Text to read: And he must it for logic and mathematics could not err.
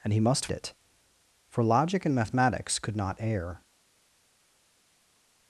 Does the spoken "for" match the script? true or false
true